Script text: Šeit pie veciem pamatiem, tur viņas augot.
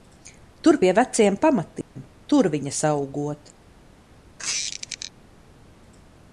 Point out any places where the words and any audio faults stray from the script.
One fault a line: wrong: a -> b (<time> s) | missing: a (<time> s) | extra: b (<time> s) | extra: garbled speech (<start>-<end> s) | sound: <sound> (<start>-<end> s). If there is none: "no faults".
wrong: Šeit -> Tur (0.6 s)
sound: dropout (1.8-2.0 s)
sound: squeak (4.4-5.1 s)